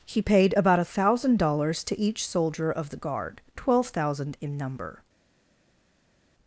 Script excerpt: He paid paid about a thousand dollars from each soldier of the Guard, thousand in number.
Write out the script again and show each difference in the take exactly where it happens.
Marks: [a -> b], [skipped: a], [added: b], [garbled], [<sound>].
He paid [skipped: paid] about a thousand dollars [from -> to] each soldier of the Guard, [added: twelve] thousand in number.